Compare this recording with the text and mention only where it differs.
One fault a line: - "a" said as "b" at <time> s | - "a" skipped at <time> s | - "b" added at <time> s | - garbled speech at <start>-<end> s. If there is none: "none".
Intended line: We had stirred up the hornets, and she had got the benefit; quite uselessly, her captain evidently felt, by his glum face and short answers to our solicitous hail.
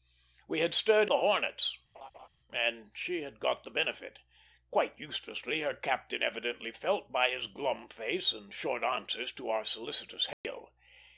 - "up" skipped at 1.1 s